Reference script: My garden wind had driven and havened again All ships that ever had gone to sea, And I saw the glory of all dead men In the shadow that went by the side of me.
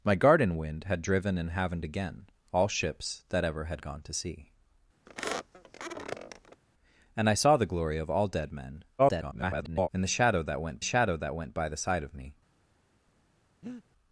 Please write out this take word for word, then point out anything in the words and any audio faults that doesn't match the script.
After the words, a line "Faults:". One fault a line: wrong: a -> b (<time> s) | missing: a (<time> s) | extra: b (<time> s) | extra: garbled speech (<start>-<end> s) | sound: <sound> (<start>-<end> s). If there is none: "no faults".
My garden wind had driven and havened again All ships that ever had gone to sea, And I saw the glory of all dead men [garbled] In the shadow that went shadow that went by the side of me.
Faults:
sound: squeak (5.1-6.6 s)
extra: garbled speech (9.0-9.9 s)
extra: shadow that went (10.8 s)
sound: breath (13.6-13.8 s)